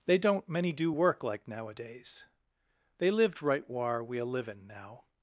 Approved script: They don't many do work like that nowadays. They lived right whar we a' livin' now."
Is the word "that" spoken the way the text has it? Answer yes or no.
no